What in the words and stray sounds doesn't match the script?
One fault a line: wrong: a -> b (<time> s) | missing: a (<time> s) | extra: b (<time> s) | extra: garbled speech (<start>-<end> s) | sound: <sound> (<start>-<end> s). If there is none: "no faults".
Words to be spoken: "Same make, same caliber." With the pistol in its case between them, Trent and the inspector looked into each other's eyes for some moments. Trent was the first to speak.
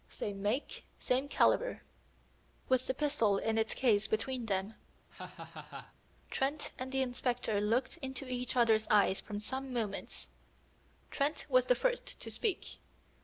sound: laugh (5.1-5.9 s)